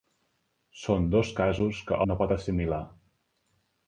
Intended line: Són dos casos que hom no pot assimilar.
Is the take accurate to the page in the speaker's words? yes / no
no